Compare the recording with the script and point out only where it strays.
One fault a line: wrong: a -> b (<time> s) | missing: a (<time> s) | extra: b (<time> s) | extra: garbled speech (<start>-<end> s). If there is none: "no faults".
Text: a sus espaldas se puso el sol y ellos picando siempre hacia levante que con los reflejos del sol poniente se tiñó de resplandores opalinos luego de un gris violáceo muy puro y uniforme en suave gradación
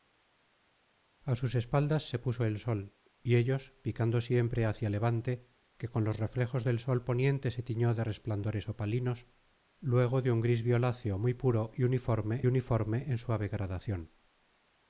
extra: uniforme (12.5 s)